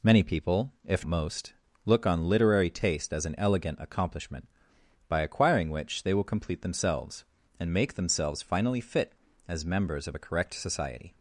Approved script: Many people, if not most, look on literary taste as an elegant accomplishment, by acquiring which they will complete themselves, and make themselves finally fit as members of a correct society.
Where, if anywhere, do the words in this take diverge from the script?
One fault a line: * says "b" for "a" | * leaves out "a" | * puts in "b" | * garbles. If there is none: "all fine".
* leaves out "not"